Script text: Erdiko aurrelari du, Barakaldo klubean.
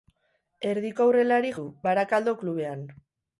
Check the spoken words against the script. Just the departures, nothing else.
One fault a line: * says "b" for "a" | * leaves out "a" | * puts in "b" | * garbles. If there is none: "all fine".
all fine